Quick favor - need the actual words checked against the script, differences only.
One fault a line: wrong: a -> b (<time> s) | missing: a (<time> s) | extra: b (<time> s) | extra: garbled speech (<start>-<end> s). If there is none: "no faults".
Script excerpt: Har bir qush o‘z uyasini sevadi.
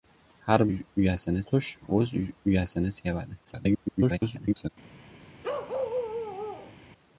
wrong: bir -> uyasini (0.7 s)
extra: garbled speech (3.4-4.7 s)